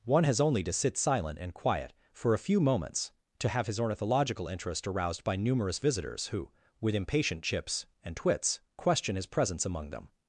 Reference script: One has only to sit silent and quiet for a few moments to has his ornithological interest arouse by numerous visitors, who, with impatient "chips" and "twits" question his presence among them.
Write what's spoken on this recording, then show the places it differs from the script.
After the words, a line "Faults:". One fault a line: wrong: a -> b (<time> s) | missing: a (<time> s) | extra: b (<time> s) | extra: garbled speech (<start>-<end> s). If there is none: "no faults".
One has only to sit silent and quiet for a few moments to have his ornithological interest aroused by numerous visitors, who, with impatient "chips" and "twits" question his presence among them.
Faults:
wrong: has -> have (3.5 s)
wrong: arouse -> aroused (4.9 s)